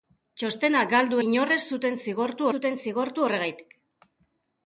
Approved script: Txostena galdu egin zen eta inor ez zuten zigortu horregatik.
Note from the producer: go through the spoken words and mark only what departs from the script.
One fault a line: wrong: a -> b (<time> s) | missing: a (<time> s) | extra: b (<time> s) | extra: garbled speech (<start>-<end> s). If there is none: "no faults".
wrong: egin zen eta inor ez -> inor ez zuten zigortu (1.3 s)